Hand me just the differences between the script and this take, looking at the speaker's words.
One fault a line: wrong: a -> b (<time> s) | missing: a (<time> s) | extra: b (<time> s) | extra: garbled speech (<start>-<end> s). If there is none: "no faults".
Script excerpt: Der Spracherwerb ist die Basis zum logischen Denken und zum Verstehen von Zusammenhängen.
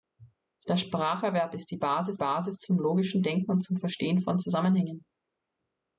extra: Basis (2.2 s)